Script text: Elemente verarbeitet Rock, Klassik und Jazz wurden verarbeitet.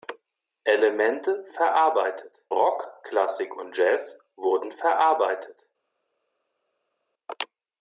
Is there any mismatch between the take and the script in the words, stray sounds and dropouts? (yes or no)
no